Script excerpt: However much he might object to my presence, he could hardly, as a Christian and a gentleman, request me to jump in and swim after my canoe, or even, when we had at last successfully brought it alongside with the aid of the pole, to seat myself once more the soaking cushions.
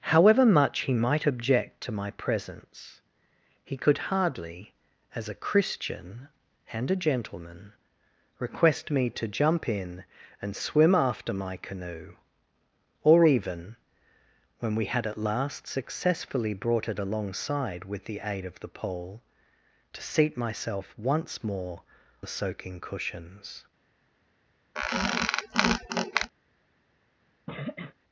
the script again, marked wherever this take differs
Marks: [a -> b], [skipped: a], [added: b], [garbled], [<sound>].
However much he might object to my presence, he could hardly, as a Christian and a gentleman, request me to jump in and swim after my canoe, or even, when we had at last successfully brought it alongside with the aid of the pole, to seat myself once more the soaking cushions. [squeak] [sniff]